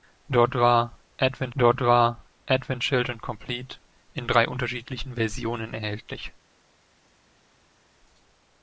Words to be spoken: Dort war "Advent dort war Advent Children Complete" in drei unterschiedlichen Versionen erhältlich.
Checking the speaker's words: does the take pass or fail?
pass